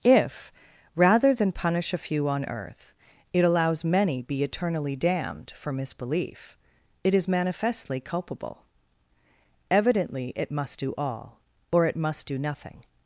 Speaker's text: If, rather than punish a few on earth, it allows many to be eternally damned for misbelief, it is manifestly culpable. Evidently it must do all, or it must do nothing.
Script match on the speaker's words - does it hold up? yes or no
no